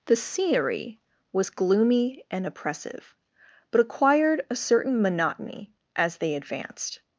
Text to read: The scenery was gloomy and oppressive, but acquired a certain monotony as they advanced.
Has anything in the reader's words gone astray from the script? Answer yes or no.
no